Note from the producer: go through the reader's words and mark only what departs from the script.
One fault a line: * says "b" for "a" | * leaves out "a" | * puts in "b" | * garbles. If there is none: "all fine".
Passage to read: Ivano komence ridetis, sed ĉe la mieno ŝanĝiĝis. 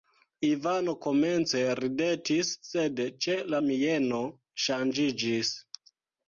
all fine